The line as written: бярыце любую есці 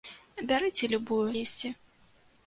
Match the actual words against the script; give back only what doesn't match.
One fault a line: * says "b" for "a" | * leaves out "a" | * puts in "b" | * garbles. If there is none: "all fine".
all fine